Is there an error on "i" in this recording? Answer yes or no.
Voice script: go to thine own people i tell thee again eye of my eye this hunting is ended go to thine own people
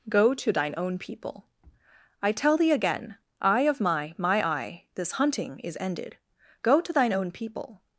no